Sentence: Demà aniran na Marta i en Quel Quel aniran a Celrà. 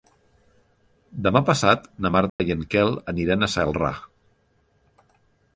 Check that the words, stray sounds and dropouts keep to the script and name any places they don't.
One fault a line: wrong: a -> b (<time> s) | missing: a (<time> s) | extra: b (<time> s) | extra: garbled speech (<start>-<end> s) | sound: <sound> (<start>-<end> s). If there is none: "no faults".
wrong: aniran -> passat (1.5 s)
sound: dropout (2.3-2.4 s)
missing: Quel (3.0 s)